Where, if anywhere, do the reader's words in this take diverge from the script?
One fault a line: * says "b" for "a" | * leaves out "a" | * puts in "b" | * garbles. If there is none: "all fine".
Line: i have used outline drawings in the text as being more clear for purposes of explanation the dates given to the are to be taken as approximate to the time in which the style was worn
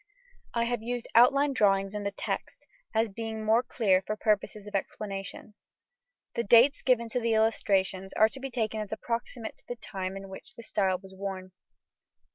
* puts in "illustrations"